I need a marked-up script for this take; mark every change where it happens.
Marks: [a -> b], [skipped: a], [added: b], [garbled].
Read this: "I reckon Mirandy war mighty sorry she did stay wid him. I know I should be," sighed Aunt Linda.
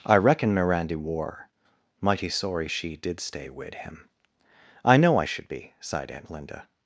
"I reckon Mirandy war mighty sorry she did stay wid him. I know I should be," sighed Aunt Linda.